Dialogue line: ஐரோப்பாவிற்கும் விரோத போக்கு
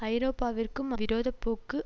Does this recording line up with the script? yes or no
yes